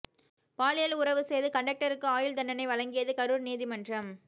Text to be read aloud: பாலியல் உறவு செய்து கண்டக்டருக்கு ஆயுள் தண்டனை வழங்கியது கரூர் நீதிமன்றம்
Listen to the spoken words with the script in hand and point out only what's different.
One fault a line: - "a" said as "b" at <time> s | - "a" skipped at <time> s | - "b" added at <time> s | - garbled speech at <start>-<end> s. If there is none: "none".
none